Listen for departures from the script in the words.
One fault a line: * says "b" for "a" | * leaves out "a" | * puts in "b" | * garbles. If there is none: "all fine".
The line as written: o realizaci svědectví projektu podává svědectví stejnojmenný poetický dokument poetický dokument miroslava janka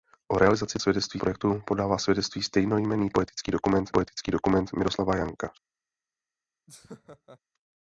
all fine